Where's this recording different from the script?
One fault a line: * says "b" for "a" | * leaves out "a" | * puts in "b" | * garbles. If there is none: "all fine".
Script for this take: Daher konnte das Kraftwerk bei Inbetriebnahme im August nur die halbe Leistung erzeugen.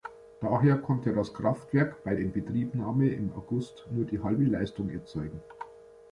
all fine